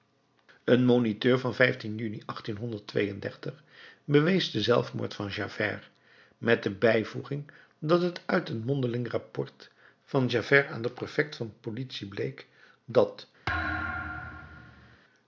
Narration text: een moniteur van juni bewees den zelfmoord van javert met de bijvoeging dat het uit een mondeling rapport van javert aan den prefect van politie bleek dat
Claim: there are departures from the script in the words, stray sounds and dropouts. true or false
true